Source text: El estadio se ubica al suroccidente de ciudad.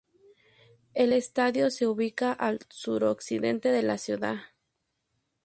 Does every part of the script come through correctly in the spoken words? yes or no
no